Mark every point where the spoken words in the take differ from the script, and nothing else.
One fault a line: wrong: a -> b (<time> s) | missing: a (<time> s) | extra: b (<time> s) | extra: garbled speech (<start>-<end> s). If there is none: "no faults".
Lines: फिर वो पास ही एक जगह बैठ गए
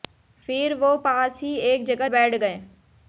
no faults